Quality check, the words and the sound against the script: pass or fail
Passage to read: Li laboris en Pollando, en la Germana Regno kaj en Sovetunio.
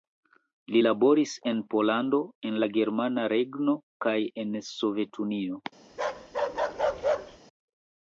fail